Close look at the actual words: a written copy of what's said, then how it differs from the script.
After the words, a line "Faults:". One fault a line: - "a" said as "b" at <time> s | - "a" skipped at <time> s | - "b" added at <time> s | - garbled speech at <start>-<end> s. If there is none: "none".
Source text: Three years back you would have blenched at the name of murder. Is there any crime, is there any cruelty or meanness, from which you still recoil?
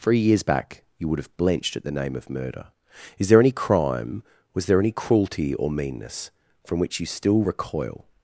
Three years back you would have blenched at the name of murder. Is there any crime, was there any cruelty or meanness, from which you still recoil?
Faults:
- "is" said as "was" at 4.5 s